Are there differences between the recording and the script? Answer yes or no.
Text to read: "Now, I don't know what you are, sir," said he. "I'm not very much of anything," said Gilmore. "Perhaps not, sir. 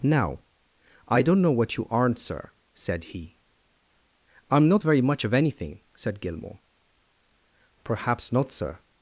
yes